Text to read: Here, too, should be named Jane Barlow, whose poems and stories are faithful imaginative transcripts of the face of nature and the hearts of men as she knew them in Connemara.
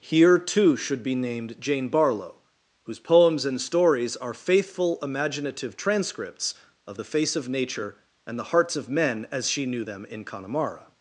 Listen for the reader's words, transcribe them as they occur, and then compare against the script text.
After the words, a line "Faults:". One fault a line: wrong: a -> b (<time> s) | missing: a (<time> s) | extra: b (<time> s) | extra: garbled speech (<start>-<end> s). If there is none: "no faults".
Here, too, should be named Jane Barlow, whose poems and stories are faithful imaginative transcripts of the face of nature and the hearts of men as she knew them in Connemara.
Faults:
no faults